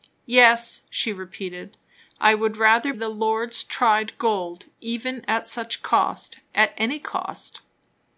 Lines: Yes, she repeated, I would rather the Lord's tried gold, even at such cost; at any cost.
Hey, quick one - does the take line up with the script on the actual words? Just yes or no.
yes